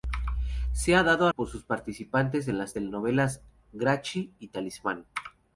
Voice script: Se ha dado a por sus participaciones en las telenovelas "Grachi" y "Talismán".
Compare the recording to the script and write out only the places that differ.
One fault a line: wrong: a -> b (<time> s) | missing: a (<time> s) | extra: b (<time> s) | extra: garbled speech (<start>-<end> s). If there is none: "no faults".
no faults